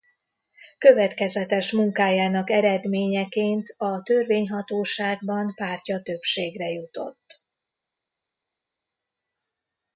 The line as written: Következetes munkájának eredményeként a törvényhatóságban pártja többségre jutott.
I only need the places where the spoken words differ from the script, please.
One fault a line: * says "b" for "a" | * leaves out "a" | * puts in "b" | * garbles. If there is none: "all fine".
all fine